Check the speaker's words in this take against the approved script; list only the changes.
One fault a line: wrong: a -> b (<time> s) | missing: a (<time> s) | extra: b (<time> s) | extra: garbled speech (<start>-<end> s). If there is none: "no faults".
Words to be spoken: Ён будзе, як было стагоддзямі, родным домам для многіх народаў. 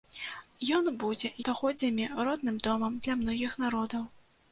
missing: як было (1.3 s)